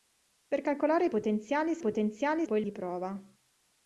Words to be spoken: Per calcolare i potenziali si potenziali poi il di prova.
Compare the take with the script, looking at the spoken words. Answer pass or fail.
pass